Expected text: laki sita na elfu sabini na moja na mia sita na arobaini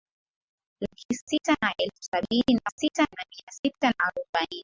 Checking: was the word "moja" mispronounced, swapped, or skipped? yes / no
yes